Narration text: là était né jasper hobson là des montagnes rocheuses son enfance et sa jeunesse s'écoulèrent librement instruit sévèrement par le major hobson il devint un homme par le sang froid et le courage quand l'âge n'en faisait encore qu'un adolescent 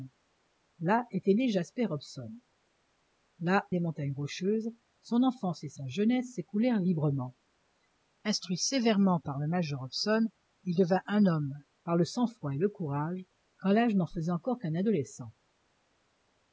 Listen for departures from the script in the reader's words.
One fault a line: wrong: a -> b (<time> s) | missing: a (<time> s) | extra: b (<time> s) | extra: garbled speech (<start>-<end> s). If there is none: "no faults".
no faults